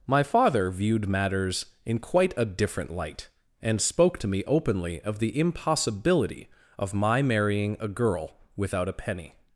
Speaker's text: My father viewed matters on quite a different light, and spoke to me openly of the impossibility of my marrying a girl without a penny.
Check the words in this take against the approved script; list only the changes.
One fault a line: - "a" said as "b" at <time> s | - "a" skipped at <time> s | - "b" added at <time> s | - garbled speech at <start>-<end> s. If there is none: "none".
- "on" said as "in" at 1.9 s